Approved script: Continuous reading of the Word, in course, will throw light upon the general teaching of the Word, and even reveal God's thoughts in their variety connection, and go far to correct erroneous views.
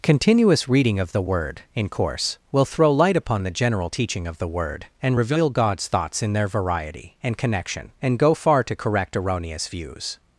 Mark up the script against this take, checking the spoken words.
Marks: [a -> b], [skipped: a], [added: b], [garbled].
Continuous reading of the Word, in course, will throw light upon the general teaching of the Word, and [skipped: even] reveal God's thoughts in their variety [added: and] connection, and go far to correct erroneous views.